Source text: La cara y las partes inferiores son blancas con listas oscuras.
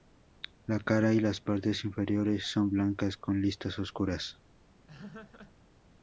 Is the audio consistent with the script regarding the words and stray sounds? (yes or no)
no